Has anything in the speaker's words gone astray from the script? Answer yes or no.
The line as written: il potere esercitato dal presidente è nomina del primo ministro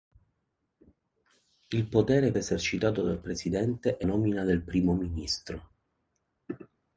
no